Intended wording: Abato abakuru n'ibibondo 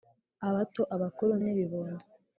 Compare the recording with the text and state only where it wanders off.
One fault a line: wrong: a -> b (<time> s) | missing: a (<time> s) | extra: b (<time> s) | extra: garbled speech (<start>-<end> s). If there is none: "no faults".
no faults